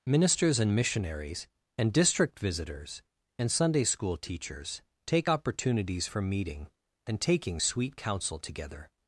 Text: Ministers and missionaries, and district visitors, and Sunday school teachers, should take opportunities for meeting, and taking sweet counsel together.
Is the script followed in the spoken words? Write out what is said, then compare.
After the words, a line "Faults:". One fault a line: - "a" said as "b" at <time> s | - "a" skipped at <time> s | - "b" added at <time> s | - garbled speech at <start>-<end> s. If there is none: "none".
Ministers and missionaries, and district visitors, and Sunday school teachers, take opportunities for meeting, and taking sweet counsel together.
Faults:
- "should" skipped at 4.8 s